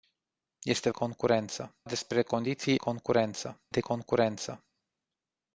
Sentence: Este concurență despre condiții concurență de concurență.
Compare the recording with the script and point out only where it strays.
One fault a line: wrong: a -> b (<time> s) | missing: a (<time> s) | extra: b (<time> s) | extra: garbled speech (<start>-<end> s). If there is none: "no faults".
no faults